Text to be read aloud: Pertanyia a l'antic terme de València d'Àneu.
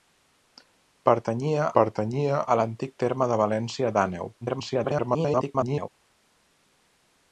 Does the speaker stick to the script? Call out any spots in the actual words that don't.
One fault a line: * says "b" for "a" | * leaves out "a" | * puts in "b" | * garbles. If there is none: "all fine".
* puts in "pertanyia"
* garbles